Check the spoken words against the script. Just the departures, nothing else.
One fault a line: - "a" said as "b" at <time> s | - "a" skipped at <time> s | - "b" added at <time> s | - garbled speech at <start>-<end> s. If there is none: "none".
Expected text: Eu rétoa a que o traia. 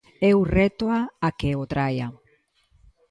none